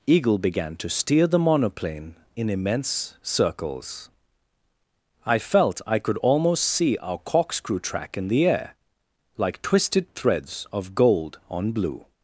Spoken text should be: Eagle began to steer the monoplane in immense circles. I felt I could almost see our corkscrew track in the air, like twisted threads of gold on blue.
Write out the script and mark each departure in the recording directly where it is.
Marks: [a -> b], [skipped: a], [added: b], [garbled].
Eagle began to steer the monoplane in immense circles. I felt I could almost see our corkscrew track in the air, like twisted threads of gold on blue.